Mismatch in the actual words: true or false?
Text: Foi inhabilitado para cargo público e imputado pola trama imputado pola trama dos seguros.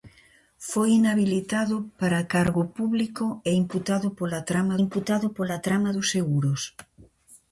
false